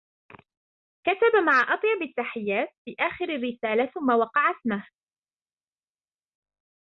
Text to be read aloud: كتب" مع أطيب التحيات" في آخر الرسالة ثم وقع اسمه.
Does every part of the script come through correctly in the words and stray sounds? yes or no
yes